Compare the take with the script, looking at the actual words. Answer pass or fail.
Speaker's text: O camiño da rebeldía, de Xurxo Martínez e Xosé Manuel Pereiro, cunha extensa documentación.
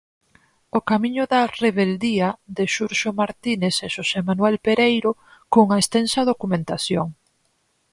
pass